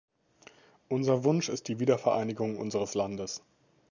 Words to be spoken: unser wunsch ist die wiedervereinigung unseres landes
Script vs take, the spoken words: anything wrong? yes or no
no